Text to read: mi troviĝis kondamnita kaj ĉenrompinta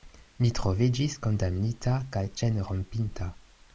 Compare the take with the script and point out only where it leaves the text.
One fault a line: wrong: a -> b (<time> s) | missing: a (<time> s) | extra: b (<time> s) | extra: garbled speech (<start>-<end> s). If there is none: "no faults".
no faults